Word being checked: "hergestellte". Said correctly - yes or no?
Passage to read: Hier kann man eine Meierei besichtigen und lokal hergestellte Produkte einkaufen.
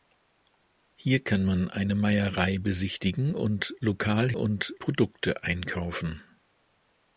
no